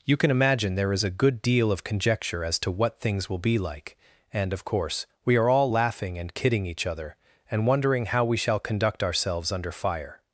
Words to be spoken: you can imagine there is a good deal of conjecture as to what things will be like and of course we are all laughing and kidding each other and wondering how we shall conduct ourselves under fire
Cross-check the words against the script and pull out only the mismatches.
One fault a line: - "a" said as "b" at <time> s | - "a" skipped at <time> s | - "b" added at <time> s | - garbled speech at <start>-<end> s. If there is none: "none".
none